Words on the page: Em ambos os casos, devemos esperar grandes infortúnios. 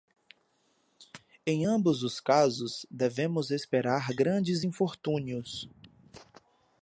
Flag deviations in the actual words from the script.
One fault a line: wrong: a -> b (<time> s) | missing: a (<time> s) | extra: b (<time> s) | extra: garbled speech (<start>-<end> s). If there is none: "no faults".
no faults